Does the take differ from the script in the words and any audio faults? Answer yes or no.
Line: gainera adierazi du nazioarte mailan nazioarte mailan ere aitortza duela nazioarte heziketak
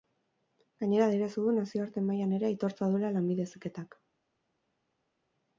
yes